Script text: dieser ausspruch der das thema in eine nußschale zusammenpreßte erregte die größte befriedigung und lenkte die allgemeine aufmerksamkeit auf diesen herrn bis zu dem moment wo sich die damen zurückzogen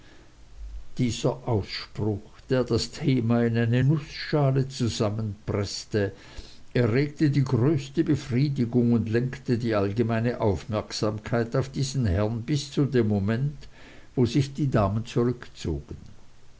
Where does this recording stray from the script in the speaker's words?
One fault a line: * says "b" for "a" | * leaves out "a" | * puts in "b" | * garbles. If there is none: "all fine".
all fine